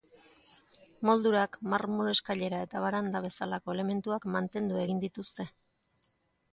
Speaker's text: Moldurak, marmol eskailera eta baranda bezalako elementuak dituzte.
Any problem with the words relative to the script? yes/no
yes